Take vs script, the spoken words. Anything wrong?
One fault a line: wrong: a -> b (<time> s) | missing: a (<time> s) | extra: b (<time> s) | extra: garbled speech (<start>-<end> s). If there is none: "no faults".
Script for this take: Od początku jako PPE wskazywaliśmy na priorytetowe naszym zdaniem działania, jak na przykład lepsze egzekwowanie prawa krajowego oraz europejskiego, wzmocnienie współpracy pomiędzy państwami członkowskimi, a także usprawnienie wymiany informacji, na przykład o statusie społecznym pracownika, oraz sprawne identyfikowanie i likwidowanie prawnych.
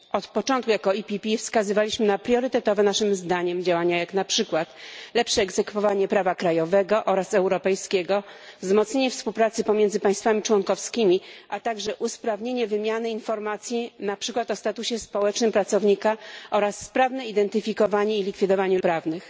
no faults